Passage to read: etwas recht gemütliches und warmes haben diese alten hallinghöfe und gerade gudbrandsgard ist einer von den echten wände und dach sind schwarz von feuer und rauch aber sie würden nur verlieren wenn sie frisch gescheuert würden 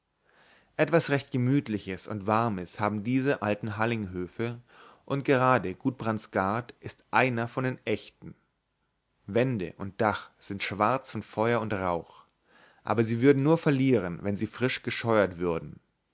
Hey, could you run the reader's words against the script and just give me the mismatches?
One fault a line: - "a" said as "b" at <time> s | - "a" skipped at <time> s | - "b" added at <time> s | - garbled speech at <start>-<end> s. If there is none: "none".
none